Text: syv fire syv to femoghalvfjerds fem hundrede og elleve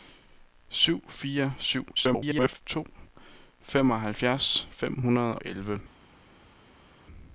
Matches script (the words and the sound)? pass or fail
fail